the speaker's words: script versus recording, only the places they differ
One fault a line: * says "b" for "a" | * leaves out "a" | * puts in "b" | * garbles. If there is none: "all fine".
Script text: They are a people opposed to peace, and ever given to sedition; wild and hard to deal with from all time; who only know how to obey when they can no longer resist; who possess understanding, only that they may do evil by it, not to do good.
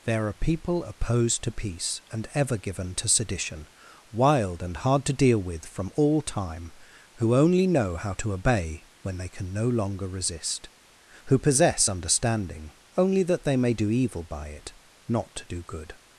* says "There" for "They"
* leaves out "a"